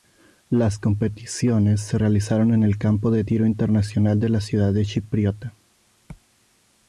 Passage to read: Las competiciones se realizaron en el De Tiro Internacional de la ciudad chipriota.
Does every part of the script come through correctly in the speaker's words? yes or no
no